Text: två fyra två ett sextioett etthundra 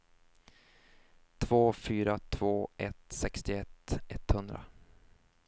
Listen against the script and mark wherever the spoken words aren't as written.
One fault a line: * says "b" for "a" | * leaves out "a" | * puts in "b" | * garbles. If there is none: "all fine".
all fine